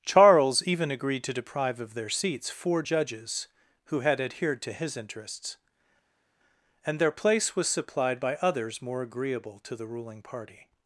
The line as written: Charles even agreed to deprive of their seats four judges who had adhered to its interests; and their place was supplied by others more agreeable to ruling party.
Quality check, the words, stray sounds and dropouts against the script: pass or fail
fail